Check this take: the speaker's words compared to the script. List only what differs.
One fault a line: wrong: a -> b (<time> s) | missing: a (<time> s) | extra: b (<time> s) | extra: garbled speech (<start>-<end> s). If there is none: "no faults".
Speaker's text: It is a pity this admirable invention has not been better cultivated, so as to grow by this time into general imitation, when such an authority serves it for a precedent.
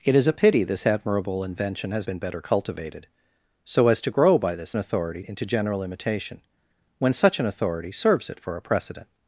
missing: not (2.1 s)
wrong: time -> authority (4.8 s)